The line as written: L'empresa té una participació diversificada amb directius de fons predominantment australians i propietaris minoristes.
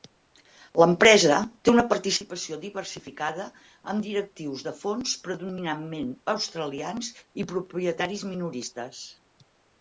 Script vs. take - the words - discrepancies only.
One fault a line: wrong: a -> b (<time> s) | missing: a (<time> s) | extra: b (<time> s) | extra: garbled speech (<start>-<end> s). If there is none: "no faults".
no faults